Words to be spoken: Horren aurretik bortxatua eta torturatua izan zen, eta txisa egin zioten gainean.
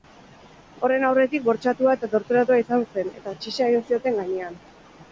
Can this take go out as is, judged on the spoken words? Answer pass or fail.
pass